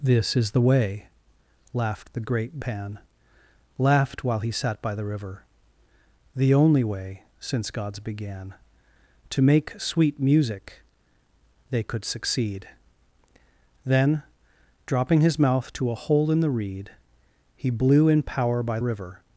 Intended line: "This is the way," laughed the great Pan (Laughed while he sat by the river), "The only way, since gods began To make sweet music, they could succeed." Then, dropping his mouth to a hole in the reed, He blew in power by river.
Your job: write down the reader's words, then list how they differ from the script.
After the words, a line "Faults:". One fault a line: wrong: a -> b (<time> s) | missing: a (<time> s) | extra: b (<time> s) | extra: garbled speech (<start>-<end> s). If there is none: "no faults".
"This is the way," laughed the great Pan (Laughed while he sat by the river), "The only way, since gods began To make sweet music, they could succeed." Then, dropping his mouth to a hole in the reed, He blew in power by river.
Faults:
no faults